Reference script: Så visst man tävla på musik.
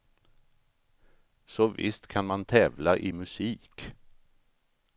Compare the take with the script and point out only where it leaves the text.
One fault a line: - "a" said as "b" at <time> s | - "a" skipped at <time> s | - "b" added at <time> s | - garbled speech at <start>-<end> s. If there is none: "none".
- "kan" added at 2.1 s
- "på" said as "i" at 3.0 s